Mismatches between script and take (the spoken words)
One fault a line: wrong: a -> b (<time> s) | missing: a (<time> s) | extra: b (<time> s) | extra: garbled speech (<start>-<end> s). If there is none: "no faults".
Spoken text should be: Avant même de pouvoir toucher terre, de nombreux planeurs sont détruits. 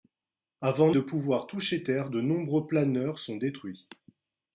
missing: même (0.9 s)